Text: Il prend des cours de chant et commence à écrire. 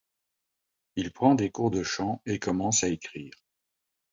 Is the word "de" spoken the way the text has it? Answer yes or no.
yes